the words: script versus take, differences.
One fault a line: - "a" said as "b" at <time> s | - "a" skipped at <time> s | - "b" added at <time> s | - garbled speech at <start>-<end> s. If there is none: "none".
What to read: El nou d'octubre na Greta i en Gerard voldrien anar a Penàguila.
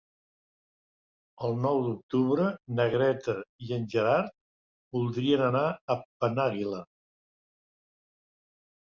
none